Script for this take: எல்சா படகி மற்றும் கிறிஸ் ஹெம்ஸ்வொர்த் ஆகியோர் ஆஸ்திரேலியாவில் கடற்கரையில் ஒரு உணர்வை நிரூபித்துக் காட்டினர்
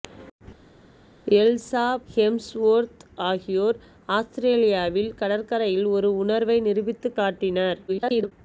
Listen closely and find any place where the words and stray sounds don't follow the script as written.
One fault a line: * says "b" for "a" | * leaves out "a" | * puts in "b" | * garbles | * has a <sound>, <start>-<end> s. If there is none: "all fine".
* leaves out "படகி மற்றும் கிறிஸ்"
* garbles